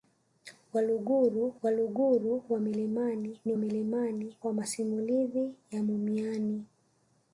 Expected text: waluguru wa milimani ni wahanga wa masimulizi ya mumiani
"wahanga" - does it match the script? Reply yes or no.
no